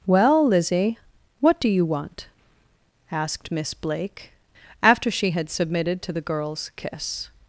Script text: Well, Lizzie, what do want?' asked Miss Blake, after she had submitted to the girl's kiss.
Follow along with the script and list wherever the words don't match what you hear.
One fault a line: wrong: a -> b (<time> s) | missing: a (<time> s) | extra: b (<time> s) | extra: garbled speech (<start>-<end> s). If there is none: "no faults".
extra: you (1.7 s)